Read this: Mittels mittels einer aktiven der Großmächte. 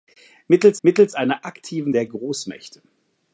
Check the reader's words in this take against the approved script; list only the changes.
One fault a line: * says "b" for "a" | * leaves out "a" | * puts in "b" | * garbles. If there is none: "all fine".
all fine